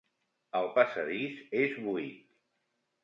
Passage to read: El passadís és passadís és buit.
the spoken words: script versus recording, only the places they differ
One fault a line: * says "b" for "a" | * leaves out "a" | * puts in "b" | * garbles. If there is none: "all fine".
* leaves out "passadís és"